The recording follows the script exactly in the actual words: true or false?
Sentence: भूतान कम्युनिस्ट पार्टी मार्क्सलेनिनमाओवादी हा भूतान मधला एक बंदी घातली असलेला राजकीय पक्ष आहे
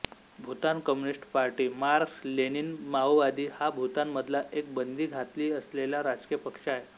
true